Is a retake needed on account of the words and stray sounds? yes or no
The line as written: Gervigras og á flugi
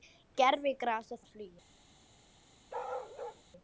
yes